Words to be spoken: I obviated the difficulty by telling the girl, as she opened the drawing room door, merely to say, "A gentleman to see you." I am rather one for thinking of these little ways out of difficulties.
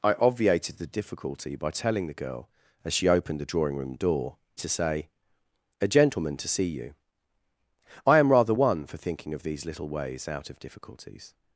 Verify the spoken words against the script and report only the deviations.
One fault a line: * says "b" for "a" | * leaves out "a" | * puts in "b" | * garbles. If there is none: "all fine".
* leaves out "merely"